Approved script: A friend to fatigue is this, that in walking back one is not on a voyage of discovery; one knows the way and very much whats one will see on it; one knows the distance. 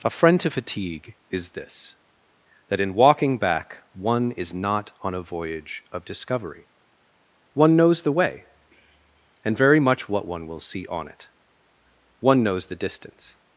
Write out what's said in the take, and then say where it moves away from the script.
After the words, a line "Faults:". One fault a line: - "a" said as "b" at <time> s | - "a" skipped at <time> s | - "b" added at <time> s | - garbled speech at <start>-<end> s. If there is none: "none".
A friend to fatigue is this, that in walking back one is not on a voyage of discovery; one knows the way and very much what one will see on it; one knows the distance.
Faults:
- "whats" said as "what" at 10.1 s